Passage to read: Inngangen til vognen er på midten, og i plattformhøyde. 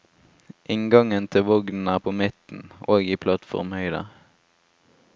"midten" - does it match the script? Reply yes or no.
yes